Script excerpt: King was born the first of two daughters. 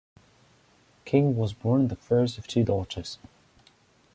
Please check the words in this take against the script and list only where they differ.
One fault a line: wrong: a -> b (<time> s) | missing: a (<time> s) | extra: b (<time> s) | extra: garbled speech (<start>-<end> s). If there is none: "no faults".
no faults